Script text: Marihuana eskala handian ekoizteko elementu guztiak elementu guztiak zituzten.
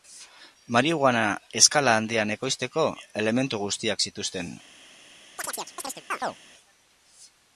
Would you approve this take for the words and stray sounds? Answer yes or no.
no